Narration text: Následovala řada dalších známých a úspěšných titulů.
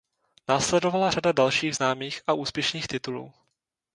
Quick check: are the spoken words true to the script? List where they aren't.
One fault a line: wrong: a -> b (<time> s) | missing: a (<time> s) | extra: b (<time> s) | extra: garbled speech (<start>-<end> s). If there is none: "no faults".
no faults